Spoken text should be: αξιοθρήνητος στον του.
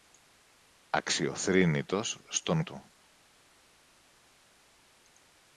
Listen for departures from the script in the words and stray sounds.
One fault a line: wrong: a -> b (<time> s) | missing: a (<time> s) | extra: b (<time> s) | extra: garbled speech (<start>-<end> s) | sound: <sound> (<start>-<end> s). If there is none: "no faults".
no faults